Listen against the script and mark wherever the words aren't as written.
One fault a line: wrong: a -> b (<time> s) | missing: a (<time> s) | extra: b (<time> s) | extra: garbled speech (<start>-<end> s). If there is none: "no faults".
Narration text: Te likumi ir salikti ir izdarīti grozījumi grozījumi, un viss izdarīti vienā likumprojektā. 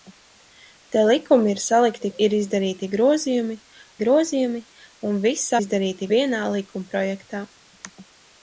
no faults